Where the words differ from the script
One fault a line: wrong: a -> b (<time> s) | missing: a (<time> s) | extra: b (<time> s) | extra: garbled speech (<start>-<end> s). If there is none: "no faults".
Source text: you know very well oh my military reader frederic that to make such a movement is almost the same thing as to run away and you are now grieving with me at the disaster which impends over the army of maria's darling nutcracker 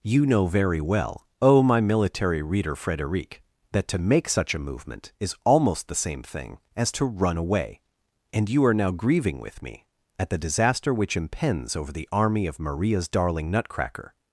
no faults